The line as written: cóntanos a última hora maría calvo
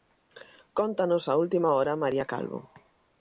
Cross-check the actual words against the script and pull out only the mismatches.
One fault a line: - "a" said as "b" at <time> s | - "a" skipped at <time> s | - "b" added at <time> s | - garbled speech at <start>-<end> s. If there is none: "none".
none